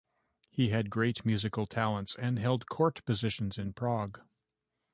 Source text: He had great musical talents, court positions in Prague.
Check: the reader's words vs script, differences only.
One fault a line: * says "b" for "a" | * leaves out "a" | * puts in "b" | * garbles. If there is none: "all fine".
* puts in "and held"